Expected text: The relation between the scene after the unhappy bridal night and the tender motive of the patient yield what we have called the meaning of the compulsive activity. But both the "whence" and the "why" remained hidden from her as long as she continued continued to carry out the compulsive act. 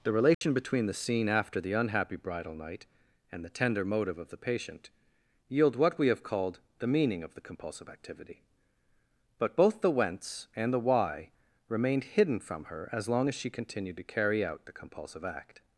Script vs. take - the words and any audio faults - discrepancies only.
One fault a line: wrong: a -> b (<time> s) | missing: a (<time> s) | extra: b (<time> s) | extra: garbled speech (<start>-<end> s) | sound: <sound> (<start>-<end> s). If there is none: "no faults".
sound: dropout (0.3-0.4 s)
missing: continued (14.0 s)